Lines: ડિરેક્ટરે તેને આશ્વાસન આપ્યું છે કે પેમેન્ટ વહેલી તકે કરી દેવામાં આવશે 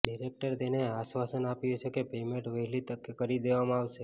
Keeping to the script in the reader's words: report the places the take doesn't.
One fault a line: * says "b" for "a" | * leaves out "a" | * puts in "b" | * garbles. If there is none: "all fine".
all fine